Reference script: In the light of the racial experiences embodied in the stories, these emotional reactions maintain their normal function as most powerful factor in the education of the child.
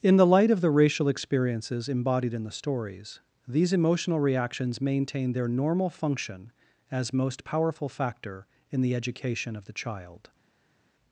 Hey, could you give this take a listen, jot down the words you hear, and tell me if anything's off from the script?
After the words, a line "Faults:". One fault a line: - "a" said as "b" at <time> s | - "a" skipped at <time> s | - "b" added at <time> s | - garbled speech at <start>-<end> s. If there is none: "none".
In the light of the racial experiences embodied in the stories, these emotional reactions maintain their normal function as most powerful factor in the education of the child.
Faults:
none